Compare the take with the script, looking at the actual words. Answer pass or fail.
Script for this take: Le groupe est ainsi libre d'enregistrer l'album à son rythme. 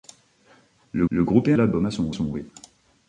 fail